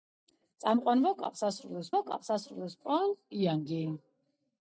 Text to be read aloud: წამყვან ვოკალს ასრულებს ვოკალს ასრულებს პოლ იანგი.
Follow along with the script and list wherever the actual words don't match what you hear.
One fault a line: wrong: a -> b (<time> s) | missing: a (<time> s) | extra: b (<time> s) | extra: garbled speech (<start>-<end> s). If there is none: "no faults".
no faults